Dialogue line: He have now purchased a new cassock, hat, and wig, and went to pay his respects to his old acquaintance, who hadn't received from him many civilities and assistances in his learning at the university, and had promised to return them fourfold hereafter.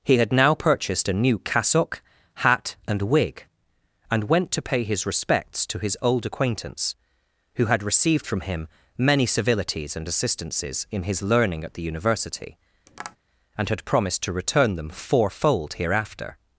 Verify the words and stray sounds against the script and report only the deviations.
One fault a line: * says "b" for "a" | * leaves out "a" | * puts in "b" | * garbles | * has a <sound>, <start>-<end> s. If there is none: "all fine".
* says "had" for "have"
* says "had" for "hadn't"
* has a tap, 12.9-13.2 s